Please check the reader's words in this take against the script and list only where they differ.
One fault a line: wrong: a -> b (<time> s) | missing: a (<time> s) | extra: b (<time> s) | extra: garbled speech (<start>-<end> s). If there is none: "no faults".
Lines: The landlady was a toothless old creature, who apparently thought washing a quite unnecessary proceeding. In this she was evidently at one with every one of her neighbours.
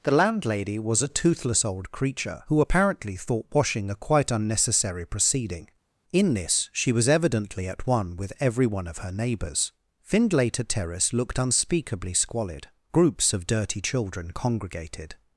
extra: Findlater Terrace looked unspeakably squalid groups of dirty children congregated (10.0 s)